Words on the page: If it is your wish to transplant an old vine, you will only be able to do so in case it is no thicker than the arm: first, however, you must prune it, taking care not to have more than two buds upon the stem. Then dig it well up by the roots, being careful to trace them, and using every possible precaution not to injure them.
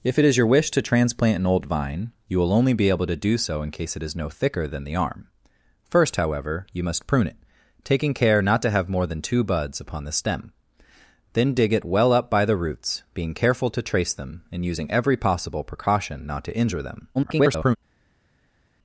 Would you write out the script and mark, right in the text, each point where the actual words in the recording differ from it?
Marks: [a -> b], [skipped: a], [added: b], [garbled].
If it is your wish to transplant an old vine, you will only be able to do so in case it is no thicker than the arm: first, however, you must prune it, taking care not to have more than two buds upon the stem. Then dig it well up by the roots, being careful to trace them, and using every possible precaution not to injure them. [garbled]